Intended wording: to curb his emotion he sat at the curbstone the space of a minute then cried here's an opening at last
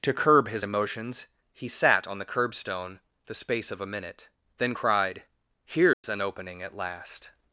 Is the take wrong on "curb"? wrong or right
right